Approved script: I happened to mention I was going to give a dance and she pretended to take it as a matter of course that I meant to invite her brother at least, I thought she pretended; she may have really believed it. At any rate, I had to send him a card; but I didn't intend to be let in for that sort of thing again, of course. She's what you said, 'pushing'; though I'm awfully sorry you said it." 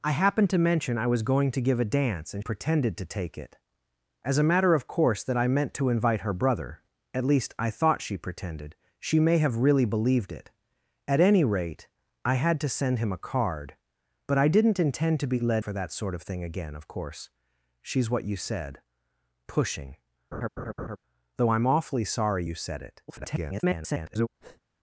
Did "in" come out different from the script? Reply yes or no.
yes